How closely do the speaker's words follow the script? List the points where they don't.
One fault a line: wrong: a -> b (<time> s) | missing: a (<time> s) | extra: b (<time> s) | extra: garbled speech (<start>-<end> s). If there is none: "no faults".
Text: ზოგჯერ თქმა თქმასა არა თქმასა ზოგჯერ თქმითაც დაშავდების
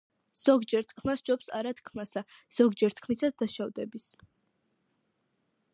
wrong: თქმასა -> სჯობს (1.2 s)